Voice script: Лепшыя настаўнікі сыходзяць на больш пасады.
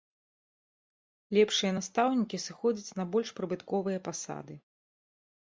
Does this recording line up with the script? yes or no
no